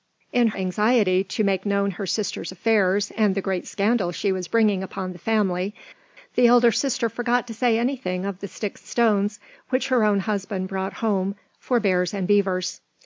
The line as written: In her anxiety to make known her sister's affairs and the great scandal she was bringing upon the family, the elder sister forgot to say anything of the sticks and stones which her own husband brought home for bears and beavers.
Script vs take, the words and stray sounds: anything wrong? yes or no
yes